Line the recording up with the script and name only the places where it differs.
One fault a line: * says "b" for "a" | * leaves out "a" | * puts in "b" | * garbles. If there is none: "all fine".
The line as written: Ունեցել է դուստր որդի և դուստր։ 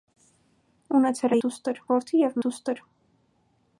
all fine